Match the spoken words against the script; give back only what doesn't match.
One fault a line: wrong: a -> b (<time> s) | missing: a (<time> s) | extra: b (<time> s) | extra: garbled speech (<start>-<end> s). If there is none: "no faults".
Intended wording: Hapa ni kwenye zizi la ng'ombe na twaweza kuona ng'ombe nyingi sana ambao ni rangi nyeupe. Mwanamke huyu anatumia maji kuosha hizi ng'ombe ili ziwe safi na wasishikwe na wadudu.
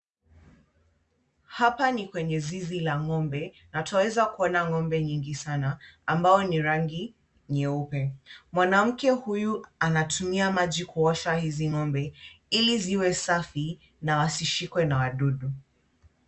no faults